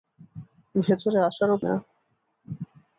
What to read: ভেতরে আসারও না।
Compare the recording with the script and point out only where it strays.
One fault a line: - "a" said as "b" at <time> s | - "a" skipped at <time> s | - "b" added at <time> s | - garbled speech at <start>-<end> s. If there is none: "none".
none